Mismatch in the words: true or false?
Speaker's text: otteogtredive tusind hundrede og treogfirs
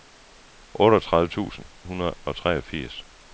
false